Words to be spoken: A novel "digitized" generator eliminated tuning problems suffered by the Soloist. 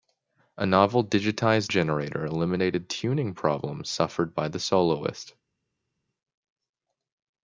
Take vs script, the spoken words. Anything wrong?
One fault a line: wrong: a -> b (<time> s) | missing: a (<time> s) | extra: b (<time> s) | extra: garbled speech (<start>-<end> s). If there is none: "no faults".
no faults